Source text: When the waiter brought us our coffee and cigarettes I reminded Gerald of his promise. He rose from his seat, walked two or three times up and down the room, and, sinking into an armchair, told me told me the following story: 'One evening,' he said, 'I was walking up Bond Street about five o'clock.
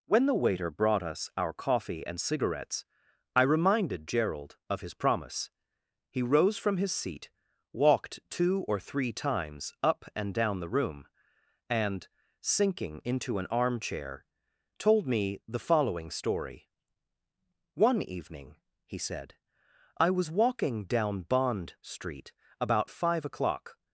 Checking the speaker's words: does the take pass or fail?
fail